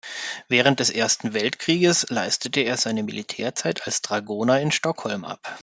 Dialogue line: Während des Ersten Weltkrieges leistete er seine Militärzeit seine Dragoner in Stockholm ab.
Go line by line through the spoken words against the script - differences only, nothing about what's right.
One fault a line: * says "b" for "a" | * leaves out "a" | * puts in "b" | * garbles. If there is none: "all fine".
* says "als" for "seine"